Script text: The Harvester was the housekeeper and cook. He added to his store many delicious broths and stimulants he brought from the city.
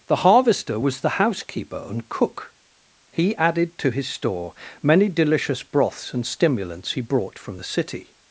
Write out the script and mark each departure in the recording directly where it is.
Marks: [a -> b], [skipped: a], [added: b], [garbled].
The Harvester was the housekeeper and cook. He added to his store many delicious broths and stimulants he brought from the city.